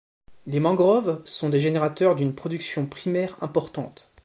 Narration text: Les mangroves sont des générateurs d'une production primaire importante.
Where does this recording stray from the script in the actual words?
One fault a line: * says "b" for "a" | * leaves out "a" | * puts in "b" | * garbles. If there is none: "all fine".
all fine